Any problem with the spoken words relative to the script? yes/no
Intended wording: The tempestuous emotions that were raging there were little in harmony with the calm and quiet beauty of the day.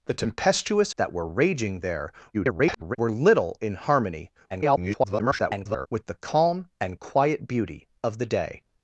yes